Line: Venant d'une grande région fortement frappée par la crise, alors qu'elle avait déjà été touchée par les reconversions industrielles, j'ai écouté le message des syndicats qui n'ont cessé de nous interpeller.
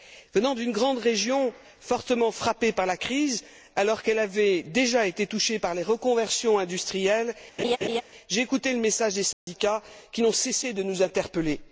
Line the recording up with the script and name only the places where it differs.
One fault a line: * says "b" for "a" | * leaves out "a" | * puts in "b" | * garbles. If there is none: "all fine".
all fine